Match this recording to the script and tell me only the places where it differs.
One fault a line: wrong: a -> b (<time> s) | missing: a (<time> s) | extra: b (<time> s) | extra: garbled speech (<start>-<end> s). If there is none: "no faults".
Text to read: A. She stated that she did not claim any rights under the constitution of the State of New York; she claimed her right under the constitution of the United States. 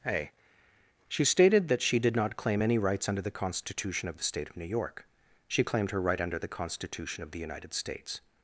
no faults